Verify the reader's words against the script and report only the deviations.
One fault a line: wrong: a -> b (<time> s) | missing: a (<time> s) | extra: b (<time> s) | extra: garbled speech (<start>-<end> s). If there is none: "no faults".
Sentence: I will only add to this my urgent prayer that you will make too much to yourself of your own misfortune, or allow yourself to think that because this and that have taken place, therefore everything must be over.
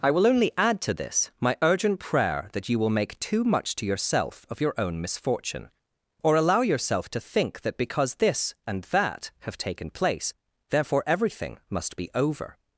no faults